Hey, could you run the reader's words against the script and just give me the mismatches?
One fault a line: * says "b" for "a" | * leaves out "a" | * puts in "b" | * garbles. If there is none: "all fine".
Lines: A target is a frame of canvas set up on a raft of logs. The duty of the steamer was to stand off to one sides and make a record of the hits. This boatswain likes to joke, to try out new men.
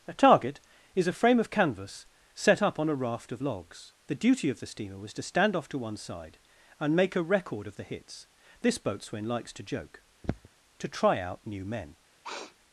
* says "side" for "sides"